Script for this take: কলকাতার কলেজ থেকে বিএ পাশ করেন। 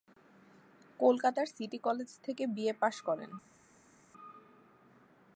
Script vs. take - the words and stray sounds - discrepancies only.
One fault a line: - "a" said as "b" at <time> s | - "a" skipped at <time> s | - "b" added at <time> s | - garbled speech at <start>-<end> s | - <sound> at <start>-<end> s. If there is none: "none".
- "সিটি" added at 1.6 s